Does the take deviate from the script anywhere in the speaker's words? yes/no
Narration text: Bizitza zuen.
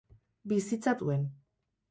no